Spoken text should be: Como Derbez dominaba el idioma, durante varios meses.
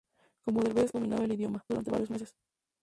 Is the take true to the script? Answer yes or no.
yes